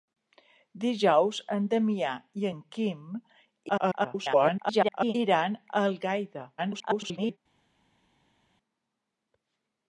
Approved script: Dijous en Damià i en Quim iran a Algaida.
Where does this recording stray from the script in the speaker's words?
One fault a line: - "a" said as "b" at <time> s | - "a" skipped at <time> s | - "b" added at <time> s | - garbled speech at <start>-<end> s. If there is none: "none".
- garbled speech at 3.7-5.1 s
- garbled speech at 6.6-7.4 s